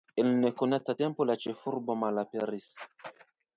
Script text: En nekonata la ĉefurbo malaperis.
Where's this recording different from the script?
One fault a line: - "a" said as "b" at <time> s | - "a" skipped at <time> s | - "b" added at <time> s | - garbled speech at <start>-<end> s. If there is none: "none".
- "tempo" added at 1.0 s